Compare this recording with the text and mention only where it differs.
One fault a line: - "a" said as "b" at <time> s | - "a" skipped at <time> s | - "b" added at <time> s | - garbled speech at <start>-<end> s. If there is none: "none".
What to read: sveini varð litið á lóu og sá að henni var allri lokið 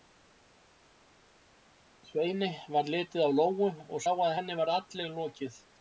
none